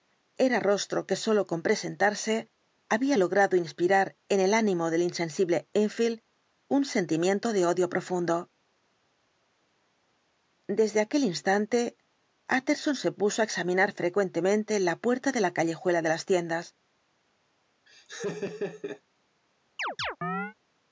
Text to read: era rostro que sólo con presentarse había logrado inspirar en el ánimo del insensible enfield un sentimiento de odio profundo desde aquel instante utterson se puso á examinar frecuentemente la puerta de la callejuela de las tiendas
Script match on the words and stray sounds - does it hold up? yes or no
no